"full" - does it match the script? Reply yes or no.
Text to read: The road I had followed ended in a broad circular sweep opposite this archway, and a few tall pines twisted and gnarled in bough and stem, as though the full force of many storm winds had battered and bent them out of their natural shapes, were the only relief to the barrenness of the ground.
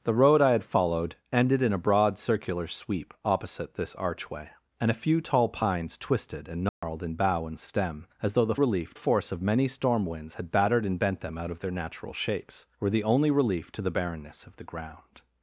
no